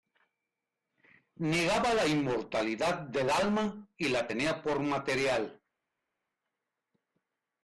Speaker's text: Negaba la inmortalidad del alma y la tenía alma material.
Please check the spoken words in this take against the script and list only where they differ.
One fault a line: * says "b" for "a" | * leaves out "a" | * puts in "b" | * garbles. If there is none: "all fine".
* says "por" for "alma"